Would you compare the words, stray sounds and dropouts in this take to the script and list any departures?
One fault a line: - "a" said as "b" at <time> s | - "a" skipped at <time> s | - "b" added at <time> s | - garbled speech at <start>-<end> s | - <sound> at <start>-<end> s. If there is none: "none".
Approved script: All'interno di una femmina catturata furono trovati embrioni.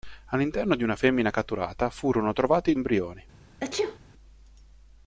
- sneeze at 3.6-4.0 s